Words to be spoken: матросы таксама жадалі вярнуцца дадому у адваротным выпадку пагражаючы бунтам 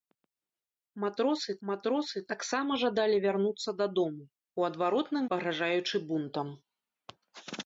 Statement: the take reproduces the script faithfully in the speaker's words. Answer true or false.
false